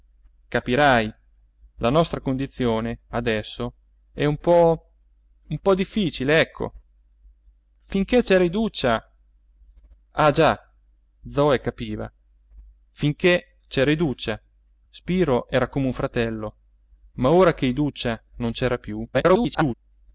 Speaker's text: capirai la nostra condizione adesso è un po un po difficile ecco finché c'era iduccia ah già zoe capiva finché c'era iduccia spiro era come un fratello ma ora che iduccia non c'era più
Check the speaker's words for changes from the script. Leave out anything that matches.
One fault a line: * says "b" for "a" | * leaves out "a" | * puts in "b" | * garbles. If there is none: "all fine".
* garbles